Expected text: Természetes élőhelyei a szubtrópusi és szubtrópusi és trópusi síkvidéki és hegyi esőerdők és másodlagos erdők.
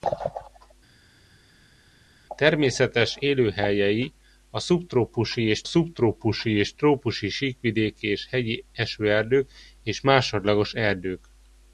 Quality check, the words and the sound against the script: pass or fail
pass